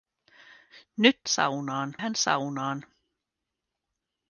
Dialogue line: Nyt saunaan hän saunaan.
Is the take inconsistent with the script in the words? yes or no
no